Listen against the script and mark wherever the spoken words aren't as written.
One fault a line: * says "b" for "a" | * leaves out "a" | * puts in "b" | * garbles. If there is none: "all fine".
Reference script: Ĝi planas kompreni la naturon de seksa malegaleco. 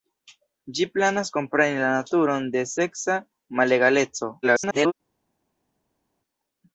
* garbles